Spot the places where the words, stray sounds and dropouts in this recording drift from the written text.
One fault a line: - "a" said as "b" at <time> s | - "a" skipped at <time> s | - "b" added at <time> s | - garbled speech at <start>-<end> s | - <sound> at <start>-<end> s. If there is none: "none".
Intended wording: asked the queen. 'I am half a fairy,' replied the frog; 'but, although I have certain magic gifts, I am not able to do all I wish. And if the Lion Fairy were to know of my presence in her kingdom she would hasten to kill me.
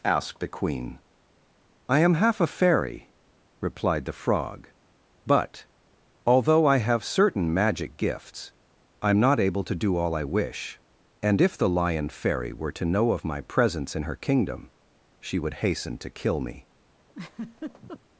- laugh at 17.1-18.0 s